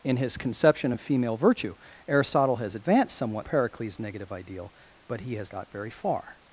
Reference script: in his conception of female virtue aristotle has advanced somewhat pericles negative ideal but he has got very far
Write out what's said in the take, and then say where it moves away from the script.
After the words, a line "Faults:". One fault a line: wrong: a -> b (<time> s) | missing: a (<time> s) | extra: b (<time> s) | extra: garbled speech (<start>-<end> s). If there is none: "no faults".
in his conception of female virtue aristotle has advanced somewhat pericles negative ideal but he has got very far
Faults:
no faults